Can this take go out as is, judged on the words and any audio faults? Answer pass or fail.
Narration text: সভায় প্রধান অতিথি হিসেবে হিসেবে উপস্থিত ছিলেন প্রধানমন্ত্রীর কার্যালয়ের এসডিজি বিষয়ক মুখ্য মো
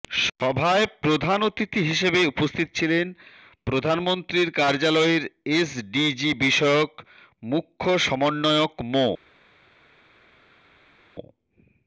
fail